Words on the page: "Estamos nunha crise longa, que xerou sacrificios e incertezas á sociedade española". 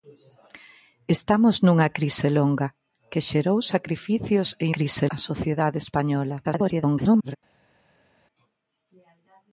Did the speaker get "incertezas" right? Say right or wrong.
wrong